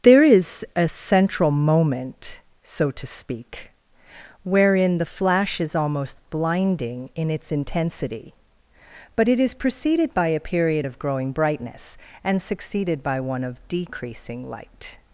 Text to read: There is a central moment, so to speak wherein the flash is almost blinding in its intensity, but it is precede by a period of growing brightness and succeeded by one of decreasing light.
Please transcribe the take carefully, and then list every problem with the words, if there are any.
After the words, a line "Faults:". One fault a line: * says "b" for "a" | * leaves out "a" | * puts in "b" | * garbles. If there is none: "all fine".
There is a central moment, so to speak wherein the flash is almost blinding in its intensity, but it is preceded by a period of growing brightness and succeeded by one of decreasing light.
Faults:
* says "preceded" for "precede"